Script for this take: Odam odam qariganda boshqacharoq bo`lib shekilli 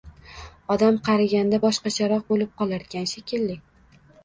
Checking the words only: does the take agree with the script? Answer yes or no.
no